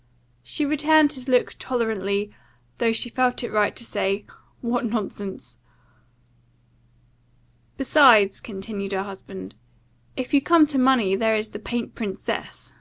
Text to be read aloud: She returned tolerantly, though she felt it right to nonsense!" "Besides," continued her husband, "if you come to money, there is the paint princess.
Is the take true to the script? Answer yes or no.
no